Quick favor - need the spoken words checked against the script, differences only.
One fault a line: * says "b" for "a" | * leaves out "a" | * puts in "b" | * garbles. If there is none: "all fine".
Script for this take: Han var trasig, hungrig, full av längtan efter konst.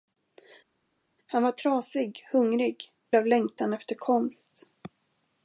* leaves out "full"